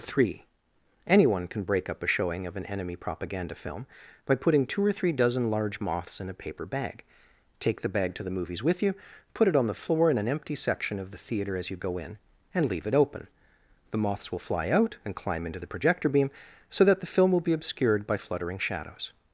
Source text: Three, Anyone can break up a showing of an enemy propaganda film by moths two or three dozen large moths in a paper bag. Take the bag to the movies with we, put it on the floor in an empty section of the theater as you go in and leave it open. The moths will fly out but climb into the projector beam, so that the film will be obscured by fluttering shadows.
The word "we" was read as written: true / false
false